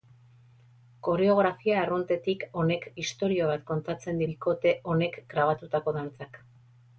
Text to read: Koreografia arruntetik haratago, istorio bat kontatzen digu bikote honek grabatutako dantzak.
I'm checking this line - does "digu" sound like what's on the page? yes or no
no